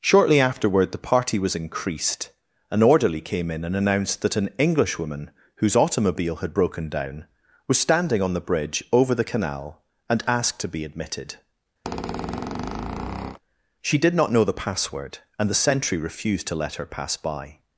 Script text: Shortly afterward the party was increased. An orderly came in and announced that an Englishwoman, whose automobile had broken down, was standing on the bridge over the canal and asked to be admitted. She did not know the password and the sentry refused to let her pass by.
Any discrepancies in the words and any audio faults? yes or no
yes